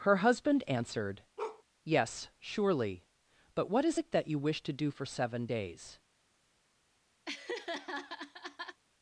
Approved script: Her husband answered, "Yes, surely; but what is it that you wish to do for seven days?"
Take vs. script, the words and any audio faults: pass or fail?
fail